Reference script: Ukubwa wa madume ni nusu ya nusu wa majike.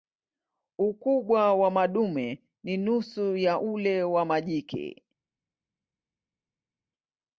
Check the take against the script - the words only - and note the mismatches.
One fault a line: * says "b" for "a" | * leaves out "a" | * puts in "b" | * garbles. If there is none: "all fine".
* says "ule" for "nusu"